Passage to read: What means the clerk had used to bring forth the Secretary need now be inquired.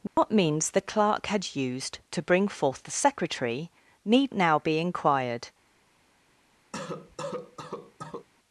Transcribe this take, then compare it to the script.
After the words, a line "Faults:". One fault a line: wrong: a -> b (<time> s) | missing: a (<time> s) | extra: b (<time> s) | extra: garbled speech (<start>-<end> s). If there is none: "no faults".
What means the clerk had used to bring forth the Secretary need now be inquired.
Faults:
no faults